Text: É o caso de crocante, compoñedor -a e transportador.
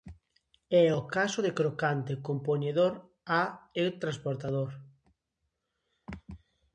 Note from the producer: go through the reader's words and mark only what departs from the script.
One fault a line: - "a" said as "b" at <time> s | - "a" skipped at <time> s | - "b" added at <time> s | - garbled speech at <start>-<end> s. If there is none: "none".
none